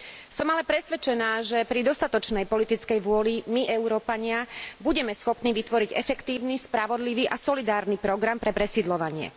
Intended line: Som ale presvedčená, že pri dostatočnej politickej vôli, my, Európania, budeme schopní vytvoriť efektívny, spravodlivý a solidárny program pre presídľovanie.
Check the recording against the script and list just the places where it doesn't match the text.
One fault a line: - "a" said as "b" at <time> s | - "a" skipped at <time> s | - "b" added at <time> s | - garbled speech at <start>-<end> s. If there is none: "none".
none